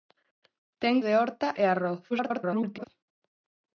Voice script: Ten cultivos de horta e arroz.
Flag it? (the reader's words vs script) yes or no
yes